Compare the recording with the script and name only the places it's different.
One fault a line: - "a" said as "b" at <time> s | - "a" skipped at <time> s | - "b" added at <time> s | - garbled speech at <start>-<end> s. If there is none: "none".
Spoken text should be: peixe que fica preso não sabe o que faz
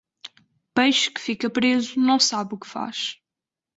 none